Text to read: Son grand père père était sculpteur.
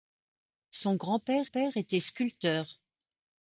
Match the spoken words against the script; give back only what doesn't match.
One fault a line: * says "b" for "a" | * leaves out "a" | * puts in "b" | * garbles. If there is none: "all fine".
all fine